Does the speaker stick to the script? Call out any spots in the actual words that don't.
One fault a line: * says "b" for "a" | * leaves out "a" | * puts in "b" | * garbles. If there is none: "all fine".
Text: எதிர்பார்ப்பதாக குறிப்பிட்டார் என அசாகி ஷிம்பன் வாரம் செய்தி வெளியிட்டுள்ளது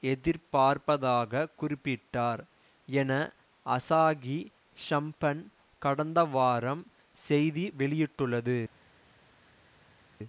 * puts in "கடந்த"